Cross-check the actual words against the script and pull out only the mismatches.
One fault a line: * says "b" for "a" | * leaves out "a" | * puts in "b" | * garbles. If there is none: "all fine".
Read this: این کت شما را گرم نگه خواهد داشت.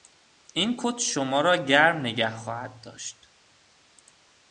all fine